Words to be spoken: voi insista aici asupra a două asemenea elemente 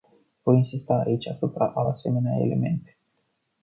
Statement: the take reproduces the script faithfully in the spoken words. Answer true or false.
false